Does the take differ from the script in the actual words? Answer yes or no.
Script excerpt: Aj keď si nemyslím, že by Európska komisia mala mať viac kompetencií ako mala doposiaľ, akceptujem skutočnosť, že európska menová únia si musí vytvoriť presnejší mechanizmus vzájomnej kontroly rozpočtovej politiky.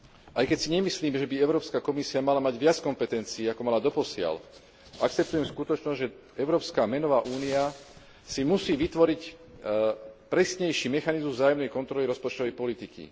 no